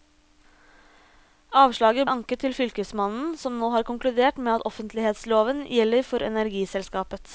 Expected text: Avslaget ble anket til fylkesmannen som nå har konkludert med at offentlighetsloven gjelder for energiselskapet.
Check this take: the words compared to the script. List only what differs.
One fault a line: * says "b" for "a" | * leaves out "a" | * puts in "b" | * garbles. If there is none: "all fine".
* leaves out "ble"